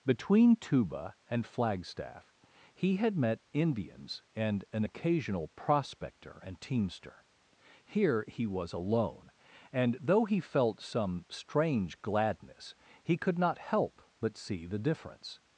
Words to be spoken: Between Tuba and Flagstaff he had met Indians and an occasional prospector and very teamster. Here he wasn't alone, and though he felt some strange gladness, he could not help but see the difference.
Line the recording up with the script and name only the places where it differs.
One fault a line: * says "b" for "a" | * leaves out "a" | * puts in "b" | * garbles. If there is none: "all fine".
* leaves out "very"
* says "was" for "wasn't"